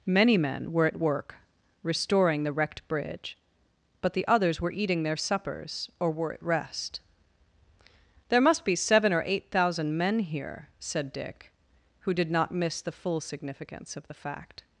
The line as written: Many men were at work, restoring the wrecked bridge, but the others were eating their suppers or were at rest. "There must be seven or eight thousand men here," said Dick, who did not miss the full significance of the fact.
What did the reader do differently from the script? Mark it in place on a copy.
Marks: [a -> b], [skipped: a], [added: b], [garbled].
Many men were at work, restoring the wrecked bridge, but the others were eating their suppers or were at rest. "There must be seven or eight thousand men here," said Dick, who did not miss the full significance of the fact.